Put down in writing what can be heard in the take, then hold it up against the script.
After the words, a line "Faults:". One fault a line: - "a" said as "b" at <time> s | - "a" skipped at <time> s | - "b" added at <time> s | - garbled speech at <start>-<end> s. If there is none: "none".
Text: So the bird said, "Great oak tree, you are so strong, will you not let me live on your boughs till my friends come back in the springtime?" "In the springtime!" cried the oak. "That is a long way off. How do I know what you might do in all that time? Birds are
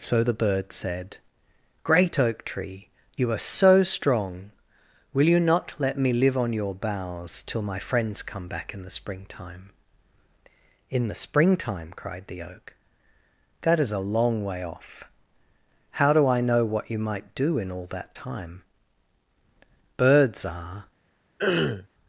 So the bird said, "Great oak tree, you are so strong, will you not let me live on your boughs till my friends come back in the springtime?" "In the springtime!" cried the oak. "That is a long way off. How do I know what you might do in all that time? Birds are
Faults:
none